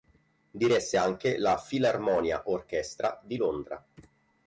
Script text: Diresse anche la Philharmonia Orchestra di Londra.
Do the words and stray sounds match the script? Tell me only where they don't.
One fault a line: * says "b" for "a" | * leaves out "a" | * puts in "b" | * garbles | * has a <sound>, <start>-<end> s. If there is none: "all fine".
all fine